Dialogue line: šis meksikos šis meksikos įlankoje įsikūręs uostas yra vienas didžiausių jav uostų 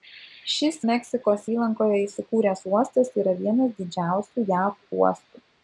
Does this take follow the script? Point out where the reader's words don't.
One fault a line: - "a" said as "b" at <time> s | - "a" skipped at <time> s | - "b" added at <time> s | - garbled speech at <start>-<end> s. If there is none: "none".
- "šis meksikos" skipped at 1.5 s